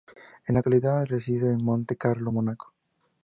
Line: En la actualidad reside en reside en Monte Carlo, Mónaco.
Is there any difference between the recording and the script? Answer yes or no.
yes